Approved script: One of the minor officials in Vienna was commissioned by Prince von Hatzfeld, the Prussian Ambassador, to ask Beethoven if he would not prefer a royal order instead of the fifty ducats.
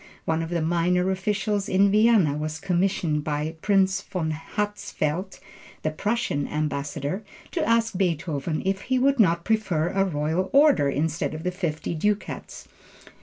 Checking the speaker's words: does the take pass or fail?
pass